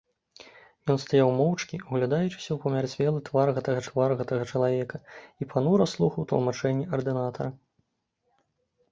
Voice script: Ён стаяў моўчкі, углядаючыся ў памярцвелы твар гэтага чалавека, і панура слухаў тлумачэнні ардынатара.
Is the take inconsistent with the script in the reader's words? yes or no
yes